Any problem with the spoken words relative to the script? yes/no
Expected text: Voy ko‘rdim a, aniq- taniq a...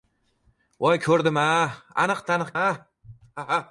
no